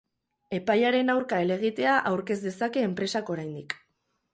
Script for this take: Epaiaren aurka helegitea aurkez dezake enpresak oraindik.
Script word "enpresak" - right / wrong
right